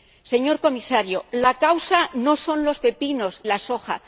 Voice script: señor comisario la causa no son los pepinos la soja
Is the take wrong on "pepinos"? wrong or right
right